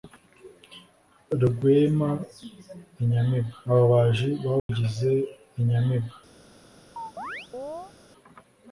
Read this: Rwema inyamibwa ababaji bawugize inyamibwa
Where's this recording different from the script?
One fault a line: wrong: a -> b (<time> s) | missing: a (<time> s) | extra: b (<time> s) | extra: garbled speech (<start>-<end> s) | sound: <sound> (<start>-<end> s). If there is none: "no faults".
sound: dropout (4.6-4.7 s)
sound: chirp (7.0-7.9 s)